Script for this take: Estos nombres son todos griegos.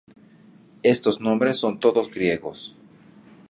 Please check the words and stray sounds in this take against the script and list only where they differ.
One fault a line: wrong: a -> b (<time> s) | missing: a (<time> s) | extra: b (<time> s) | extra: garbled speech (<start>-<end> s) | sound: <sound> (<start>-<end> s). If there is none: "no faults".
no faults